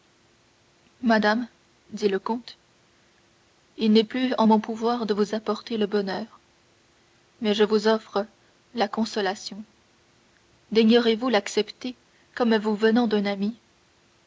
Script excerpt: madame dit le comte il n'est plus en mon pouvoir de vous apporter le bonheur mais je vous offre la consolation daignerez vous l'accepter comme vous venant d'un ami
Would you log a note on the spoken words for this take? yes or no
no